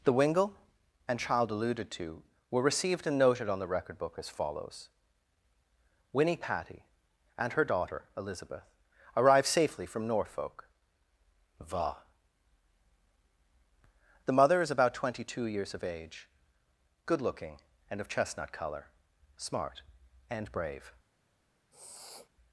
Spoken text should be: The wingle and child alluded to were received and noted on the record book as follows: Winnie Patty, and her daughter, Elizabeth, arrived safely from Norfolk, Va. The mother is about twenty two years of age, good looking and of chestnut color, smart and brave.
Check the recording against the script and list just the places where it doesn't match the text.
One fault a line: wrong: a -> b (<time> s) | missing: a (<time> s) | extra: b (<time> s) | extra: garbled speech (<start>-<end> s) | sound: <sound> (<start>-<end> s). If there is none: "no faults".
sound: sniff (21.7-22.3 s)